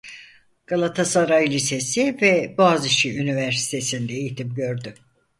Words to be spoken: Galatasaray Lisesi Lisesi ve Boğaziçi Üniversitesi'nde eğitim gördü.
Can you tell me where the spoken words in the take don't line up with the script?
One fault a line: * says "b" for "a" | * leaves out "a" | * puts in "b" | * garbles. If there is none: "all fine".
* leaves out "Lisesi"